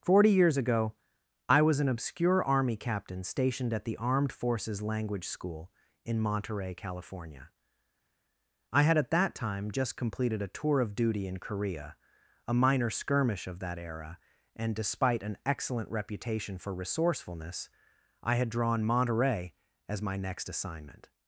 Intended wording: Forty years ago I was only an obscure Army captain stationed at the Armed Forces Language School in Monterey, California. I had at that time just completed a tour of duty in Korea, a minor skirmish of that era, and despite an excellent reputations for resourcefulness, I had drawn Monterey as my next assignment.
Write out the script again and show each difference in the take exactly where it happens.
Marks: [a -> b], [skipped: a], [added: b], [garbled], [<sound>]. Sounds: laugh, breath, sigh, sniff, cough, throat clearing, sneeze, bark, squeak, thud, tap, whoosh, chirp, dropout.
Forty years ago I was [skipped: only] an obscure Army captain stationed at the Armed Forces Language School in Monterey, California. I had at that time just completed a tour of duty in Korea, a minor skirmish of that era, and despite an excellent [reputations -> reputation] for resourcefulness, I had drawn Monterey as my next assignment.